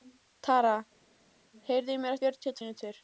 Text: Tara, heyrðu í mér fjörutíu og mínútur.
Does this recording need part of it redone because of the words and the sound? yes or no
no